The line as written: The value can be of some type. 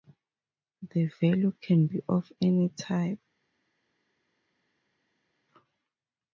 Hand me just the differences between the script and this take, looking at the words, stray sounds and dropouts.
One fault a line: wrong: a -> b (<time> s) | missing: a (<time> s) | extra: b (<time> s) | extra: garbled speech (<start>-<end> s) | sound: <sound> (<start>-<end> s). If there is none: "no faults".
wrong: some -> any (2.4 s)